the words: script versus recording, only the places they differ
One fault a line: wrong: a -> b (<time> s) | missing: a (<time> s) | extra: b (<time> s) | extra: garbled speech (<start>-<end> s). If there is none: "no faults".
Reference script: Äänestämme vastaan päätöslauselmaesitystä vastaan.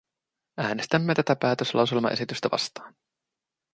wrong: vastaan -> tätä (1.1 s)